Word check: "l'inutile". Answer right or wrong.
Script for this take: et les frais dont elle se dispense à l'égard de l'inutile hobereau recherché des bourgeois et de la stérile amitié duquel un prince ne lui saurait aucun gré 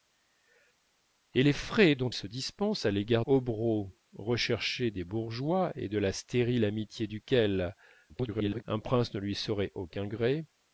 wrong